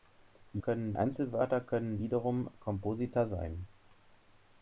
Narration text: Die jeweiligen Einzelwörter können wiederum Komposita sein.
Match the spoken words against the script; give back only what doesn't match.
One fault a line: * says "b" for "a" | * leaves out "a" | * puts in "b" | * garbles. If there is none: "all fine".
* says "können" for "jeweiligen"